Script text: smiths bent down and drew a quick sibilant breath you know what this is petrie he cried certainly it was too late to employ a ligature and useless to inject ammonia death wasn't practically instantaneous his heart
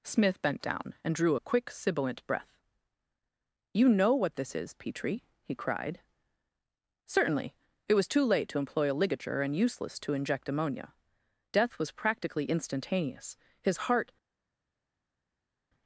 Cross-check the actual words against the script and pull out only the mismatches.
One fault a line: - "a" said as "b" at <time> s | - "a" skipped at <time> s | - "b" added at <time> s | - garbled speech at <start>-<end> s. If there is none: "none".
- "smiths" said as "smith" at 0.0 s
- "wasn't" said as "was" at 11.8 s